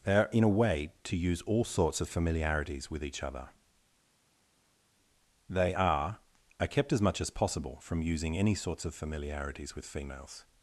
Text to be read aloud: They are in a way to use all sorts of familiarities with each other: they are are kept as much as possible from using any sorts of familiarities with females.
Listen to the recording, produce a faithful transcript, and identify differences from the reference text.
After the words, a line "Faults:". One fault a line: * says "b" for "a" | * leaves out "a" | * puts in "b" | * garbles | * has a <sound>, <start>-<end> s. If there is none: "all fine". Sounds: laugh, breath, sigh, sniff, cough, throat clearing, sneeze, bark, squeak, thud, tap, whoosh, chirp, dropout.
They are in a way to use all sorts of familiarities with each other: they are are kept as much as possible from using any sorts of familiarities with females.
Faults:
all fine